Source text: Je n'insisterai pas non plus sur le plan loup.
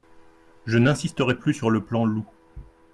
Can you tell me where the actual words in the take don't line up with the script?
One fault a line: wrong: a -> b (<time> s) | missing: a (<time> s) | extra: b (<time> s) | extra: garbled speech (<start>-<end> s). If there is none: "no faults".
missing: pas non (1.4 s)